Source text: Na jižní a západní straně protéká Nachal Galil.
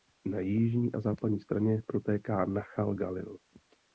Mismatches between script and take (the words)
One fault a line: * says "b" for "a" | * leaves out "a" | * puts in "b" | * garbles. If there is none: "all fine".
all fine